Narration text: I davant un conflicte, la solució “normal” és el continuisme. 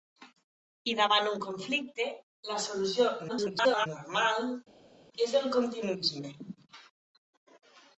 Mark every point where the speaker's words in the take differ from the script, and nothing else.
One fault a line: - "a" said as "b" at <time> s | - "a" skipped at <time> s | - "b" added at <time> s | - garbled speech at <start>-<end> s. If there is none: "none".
- garbled speech at 3.3-3.9 s